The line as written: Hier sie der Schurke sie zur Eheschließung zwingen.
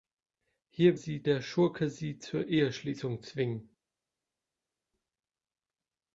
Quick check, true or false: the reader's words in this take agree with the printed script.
true